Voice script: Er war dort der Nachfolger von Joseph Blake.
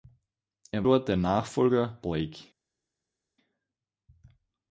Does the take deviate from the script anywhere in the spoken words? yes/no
yes